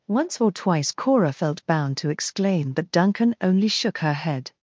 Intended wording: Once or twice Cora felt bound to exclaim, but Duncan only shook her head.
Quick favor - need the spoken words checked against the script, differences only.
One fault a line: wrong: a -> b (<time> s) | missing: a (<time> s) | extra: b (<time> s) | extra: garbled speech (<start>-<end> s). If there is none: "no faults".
no faults